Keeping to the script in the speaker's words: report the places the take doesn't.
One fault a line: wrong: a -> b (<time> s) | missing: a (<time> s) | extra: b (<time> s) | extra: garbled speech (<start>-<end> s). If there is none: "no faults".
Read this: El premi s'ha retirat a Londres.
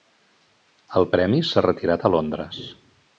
no faults